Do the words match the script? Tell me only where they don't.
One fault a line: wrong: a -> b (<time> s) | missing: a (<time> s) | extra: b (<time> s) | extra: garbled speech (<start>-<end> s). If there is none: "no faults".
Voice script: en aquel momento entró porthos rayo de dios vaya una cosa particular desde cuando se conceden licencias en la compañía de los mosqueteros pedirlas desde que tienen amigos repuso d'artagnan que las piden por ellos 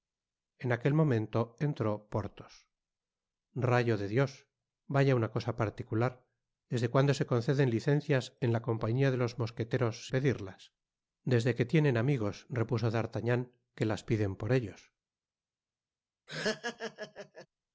no faults